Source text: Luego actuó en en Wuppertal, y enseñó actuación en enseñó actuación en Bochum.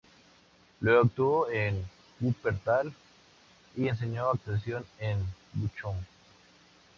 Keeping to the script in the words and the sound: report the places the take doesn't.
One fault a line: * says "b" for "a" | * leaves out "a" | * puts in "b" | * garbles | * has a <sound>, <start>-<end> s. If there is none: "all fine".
* leaves out "en"
* leaves out "enseñó actuación en"